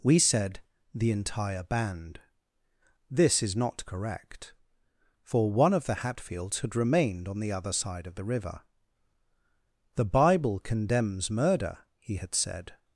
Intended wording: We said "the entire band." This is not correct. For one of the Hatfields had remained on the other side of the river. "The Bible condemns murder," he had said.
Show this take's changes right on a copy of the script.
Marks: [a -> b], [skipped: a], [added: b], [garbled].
We said "the entire band." This is not correct. For one of the Hatfields had remained on the other side of the river. "The Bible condemns murder," he had said.